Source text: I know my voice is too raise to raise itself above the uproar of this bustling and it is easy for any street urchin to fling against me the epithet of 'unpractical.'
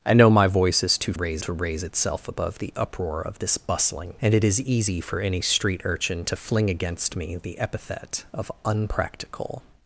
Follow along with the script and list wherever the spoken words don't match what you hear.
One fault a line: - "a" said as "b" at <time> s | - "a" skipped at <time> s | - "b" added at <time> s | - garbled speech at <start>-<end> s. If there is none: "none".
none